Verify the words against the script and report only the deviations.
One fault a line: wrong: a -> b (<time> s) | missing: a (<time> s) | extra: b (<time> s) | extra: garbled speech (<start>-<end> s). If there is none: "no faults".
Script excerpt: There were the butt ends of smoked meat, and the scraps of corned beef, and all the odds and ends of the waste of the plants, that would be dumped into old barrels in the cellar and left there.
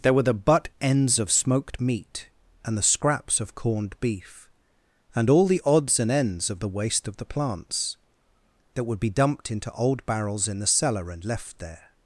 no faults